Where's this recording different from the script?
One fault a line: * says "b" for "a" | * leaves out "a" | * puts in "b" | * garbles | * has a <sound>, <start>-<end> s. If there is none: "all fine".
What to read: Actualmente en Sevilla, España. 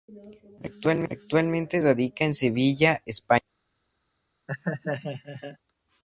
* puts in "radica"
* has a laugh, 4.5-5.6 s